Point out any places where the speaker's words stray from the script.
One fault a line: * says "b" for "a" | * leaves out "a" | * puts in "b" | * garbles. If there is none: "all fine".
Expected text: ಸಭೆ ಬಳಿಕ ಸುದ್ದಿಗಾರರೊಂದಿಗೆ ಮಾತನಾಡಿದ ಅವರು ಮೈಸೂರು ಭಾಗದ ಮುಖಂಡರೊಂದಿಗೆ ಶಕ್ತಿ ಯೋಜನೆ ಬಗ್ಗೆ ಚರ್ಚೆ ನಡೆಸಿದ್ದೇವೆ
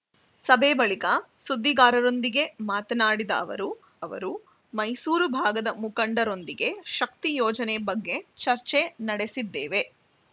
* puts in "ಅವರು"